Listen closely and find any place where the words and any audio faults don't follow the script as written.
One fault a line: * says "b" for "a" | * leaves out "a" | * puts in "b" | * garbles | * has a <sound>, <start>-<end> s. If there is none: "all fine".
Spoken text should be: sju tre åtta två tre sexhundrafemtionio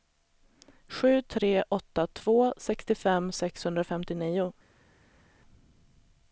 * says "sextiofem" for "tre"